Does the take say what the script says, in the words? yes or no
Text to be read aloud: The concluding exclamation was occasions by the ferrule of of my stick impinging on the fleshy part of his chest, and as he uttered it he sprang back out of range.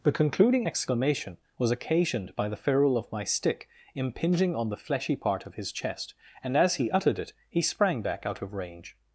no